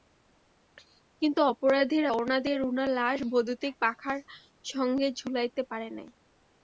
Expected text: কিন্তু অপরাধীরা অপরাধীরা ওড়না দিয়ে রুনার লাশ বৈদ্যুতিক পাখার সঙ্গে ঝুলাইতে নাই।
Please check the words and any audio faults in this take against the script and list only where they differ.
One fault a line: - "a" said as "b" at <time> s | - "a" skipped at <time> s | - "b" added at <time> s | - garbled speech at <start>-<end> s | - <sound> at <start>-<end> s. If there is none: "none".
- "অপরাধীরা" skipped at 2.1 s
- "পারে" added at 5.7 s